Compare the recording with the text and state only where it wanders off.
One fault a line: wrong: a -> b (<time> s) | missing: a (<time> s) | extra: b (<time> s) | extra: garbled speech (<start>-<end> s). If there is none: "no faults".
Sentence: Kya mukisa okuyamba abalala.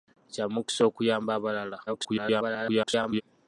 extra: garbled speech (1.9-3.2 s)